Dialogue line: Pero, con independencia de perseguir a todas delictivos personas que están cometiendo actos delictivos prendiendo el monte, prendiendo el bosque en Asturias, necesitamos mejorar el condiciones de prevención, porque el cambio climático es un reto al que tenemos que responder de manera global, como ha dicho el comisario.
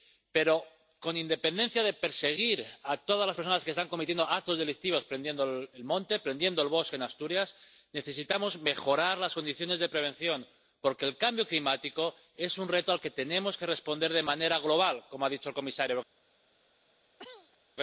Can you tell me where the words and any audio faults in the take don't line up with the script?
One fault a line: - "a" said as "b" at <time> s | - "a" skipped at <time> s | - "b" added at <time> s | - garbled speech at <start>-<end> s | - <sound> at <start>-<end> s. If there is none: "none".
- "delictivos" said as "las" at 3.3 s
- "el" said as "las" at 9.2 s
- cough at 17.2-17.6 s